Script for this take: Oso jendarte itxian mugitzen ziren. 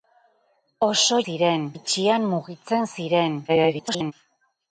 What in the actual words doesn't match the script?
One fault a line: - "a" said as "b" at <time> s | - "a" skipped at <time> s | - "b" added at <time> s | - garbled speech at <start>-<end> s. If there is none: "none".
- "jendarte" said as "ziren" at 1.3 s
- garbled speech at 3.5-4.1 s